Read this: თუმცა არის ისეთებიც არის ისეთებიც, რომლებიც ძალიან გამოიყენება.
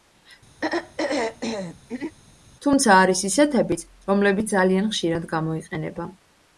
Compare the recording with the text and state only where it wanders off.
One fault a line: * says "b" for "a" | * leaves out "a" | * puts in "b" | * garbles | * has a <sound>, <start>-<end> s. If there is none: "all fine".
* has a throat clearing, 0.6-2.2 s
* leaves out "არის ისეთებიც"
* puts in "ხშირად"